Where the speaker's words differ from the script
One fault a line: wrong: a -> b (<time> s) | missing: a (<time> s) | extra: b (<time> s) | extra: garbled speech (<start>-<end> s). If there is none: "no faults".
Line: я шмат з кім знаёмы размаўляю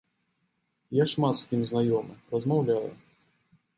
no faults